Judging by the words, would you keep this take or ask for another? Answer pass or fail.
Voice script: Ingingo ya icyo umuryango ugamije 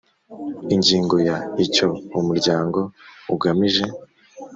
pass